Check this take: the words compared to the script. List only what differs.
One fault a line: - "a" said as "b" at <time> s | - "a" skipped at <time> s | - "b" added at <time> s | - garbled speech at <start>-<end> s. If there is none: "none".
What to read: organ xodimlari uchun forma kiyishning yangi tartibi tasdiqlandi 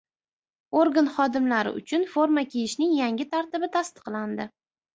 none